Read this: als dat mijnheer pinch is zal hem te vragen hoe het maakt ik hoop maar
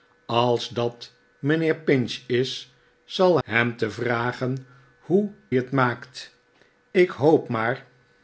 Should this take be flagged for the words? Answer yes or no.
no